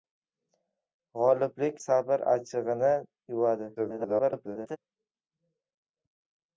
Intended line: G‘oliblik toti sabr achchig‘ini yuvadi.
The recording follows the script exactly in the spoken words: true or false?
false